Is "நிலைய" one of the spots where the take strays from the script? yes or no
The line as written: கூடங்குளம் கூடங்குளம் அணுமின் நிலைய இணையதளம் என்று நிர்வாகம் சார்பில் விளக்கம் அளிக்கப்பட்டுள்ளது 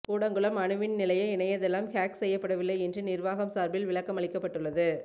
no